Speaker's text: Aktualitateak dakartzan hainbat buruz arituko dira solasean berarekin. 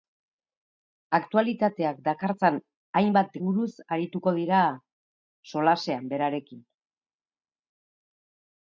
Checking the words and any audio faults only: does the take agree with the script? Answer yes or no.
yes